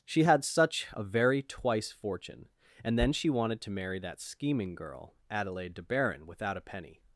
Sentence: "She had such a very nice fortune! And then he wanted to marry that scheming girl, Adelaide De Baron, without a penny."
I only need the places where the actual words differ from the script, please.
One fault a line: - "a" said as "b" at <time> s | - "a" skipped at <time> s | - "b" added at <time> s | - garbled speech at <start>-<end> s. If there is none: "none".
- "nice" said as "twice" at 1.4 s
- "he" said as "she" at 3.1 s